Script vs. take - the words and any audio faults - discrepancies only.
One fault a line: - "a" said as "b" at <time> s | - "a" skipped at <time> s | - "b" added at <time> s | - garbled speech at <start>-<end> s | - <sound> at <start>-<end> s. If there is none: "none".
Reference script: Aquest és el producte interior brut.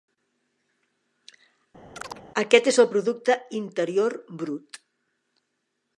- chirp at 1.9-2.2 s